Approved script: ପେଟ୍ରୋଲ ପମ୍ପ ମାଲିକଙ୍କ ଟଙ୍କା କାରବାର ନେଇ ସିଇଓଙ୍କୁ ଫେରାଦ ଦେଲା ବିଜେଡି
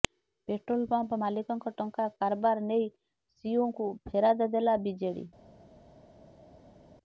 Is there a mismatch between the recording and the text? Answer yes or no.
no